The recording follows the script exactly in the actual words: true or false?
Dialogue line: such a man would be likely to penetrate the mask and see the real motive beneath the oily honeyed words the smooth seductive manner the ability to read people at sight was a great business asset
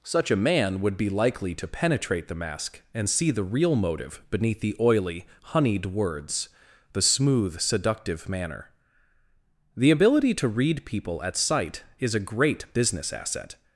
false